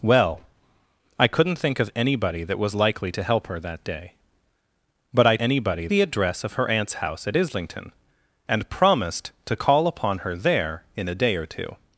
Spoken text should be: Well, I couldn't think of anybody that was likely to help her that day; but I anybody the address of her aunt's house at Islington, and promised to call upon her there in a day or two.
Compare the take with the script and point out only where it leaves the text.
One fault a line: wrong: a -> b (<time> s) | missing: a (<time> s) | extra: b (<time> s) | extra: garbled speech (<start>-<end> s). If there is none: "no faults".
no faults